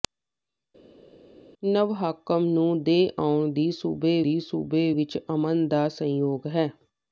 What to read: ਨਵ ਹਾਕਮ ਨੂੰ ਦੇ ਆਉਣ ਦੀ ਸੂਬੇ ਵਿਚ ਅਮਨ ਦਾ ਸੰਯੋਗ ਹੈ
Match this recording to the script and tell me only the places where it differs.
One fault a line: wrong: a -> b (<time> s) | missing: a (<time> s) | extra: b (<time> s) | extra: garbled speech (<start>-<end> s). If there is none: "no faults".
extra: ਦੀ ਸੂਬੇ (4.2 s)